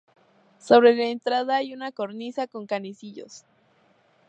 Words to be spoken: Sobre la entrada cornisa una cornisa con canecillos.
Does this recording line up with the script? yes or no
no